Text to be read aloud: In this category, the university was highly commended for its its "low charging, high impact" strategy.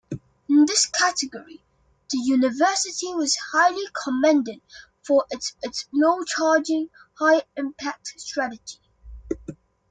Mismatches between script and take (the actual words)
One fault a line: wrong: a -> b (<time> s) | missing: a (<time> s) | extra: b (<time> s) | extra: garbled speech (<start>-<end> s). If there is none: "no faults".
no faults